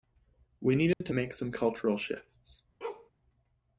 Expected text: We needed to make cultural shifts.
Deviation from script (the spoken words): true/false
true